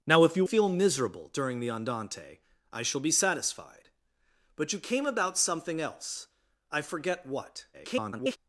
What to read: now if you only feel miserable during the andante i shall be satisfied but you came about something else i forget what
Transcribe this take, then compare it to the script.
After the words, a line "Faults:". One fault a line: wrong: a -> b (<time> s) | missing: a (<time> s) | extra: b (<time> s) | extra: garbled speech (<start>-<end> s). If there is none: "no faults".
now if you feel miserable during the andante i shall be satisfied but you came about something else i forget what [garbled]
Faults:
missing: only (0.5 s)
extra: garbled speech (7.7-8.4 s)